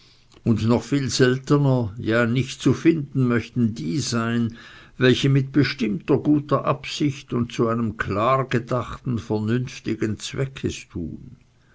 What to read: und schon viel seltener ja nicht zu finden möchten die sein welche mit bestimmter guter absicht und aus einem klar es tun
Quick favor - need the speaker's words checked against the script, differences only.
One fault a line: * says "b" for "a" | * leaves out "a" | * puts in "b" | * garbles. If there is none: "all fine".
* says "noch" for "schon"
* says "zu" for "aus"
* puts in "gedachten vernünftigen zweck"